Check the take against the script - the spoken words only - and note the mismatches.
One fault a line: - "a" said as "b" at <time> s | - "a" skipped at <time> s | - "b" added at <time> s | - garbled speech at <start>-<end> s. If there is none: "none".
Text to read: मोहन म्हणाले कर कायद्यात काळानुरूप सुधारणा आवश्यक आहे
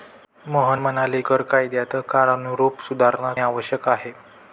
none